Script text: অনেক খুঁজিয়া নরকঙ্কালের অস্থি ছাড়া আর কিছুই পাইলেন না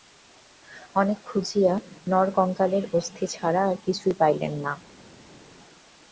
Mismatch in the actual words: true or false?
false